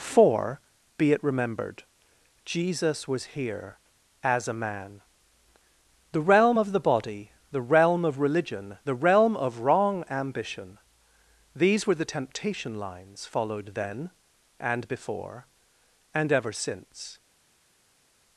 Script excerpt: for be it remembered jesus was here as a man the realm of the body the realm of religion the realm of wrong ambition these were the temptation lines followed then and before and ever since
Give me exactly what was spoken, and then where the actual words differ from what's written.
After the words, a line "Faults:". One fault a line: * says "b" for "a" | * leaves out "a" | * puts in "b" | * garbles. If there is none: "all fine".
for be it remembered jesus was here as a man the realm of the body the realm of religion the realm of wrong ambition these were the temptation lines followed then and before and ever since
Faults:
all fine